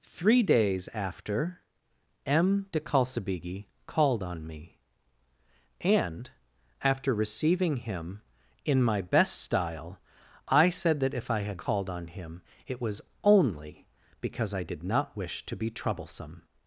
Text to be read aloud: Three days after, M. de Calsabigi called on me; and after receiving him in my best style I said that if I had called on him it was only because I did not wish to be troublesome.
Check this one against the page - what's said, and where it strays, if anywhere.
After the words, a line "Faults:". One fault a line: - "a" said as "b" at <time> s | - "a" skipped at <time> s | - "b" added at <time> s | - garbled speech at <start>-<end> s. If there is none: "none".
Three days after, M. de Calsabigi called on me; and after receiving him in my best style I said that if I had called on him it was only because I did not wish to be troublesome.
Faults:
none